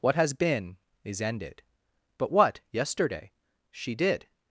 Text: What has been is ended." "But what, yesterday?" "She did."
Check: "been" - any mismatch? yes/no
no